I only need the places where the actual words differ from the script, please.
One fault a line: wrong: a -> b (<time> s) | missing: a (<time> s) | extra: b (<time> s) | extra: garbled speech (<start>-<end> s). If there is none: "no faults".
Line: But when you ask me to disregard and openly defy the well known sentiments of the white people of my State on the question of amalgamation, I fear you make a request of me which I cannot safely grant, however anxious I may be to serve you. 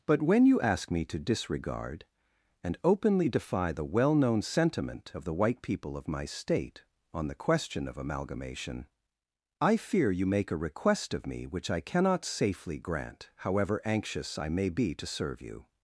wrong: sentiments -> sentiment (4.4 s)